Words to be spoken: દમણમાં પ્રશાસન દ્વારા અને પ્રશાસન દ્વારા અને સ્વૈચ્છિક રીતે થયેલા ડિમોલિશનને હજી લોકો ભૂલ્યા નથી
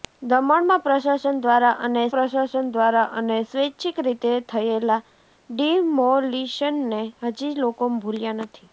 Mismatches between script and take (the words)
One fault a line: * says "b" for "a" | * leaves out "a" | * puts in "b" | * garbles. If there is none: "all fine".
all fine